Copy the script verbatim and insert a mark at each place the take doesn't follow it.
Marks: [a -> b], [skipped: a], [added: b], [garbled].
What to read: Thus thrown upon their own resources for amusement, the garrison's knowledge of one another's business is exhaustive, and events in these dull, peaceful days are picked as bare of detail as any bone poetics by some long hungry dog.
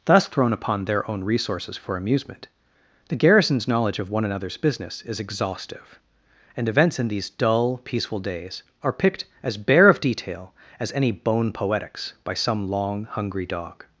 Thus thrown upon their own resources for amusement, the garrison's knowledge of one another's business is exhaustive, and events in these dull, peaceful days are picked as bare of detail as any bone poetics by some long hungry dog.